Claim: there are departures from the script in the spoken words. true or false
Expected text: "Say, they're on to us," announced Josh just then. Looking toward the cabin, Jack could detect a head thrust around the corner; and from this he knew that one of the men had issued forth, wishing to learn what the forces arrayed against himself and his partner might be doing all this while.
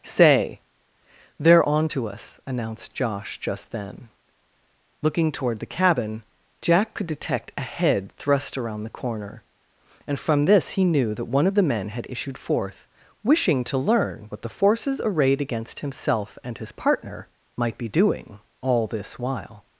false